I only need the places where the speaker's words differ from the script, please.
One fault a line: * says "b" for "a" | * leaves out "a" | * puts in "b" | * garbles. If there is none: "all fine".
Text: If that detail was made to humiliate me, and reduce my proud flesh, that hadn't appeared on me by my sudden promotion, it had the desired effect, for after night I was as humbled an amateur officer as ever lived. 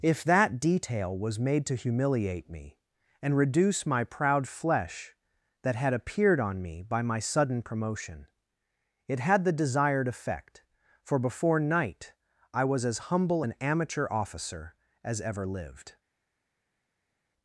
* says "had" for "hadn't"
* says "before" for "after"
* says "humble" for "humbled"